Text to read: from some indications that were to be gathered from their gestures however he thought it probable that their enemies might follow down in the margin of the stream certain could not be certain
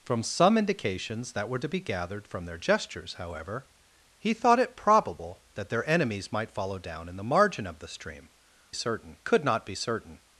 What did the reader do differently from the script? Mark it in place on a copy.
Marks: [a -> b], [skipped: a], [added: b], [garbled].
from some indications that were to be gathered from their gestures however he thought it probable that their enemies might follow down in the margin of the stream certain could not be certain